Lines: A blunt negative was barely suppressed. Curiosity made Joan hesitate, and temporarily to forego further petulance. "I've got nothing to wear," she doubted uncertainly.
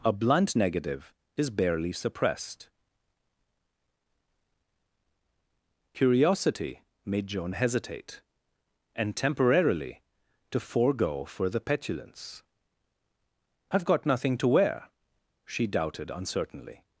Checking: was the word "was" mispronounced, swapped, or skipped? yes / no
yes